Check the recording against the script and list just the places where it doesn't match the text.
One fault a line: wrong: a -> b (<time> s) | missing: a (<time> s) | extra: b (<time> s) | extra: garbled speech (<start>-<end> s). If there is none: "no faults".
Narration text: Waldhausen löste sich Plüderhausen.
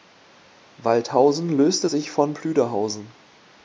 extra: von (2.1 s)